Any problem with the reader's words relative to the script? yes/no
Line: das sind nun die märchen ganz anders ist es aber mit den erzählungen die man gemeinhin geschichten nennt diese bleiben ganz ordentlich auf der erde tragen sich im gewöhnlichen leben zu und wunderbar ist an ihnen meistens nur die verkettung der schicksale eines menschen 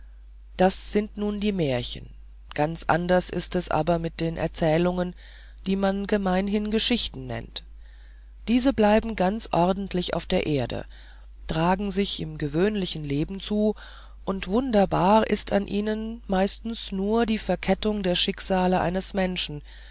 no